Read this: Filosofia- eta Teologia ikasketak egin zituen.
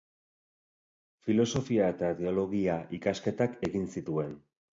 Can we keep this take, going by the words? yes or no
yes